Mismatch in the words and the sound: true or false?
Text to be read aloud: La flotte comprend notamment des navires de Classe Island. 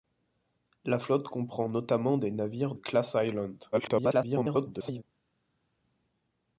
true